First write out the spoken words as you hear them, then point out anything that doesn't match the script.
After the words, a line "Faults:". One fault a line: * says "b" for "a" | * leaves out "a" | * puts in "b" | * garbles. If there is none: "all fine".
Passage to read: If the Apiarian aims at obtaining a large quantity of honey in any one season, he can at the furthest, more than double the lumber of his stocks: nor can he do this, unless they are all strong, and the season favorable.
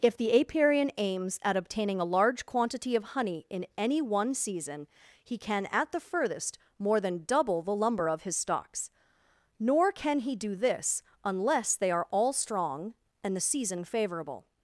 If the Apiarian aims at obtaining a large quantity of honey in any one season, he can at the furthest, more than double the lumber of his stocks: nor can he do this, unless they are all strong, and the season favorable.
Faults:
all fine